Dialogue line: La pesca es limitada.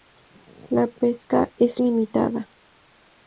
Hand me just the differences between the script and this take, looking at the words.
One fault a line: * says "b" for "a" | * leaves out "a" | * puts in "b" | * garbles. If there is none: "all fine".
all fine